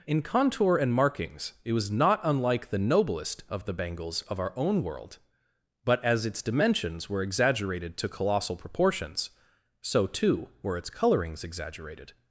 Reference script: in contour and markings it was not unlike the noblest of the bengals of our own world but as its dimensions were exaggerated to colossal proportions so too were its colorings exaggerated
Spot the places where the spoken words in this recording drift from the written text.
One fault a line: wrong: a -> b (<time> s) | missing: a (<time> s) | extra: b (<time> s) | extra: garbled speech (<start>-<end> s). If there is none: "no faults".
no faults